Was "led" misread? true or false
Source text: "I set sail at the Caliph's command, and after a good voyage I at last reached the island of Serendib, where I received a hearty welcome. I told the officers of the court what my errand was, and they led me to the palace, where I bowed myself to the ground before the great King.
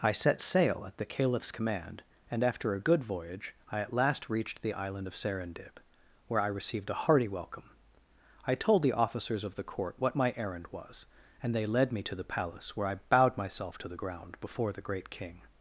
false